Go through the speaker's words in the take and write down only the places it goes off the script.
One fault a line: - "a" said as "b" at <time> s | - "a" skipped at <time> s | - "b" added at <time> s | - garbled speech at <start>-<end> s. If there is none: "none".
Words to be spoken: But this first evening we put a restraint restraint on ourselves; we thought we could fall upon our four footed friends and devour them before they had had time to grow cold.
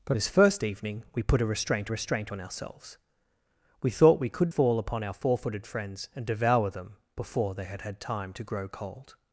none